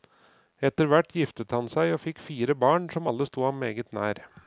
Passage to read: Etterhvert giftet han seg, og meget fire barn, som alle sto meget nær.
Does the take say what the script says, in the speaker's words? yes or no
no